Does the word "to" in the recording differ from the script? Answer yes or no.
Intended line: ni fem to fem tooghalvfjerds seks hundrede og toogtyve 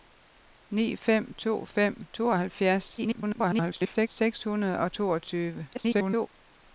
no